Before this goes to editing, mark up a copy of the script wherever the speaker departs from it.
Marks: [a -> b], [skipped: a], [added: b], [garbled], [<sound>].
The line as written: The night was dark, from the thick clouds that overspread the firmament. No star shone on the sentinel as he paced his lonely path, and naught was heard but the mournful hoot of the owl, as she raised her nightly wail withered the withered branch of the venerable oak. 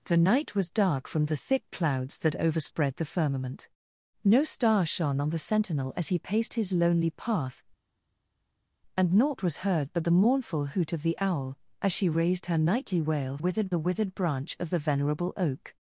The night was dark, from the thick clouds that overspread the firmament. No star shone on the sentinel as he paced his lonely path, and naught was heard but the mournful hoot of the owl, as she raised her nightly wail withered the withered branch of the venerable oak.